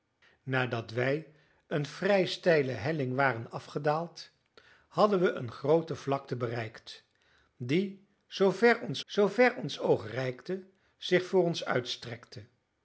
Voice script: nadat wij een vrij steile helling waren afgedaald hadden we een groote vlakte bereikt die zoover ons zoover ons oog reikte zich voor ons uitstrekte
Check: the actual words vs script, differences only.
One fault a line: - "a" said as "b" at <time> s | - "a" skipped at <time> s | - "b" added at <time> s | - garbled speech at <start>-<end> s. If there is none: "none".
none